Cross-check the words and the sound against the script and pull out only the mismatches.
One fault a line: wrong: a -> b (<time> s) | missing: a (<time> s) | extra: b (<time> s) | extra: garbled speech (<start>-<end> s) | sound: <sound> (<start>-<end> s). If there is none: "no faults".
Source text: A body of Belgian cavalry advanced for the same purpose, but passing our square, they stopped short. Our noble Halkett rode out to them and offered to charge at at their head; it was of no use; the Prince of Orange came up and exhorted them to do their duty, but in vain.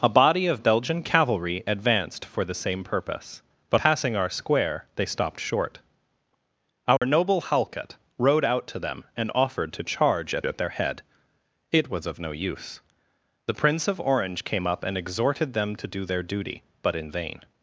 sound: dropout (7.0-7.0 s)